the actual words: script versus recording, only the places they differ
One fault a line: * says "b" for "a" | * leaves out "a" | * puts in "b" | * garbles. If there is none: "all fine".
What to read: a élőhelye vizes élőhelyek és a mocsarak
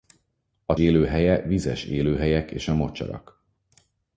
all fine